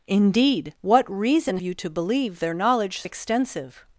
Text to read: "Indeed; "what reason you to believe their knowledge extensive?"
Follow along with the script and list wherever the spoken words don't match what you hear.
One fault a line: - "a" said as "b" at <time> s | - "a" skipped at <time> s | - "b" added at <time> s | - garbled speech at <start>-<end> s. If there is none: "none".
none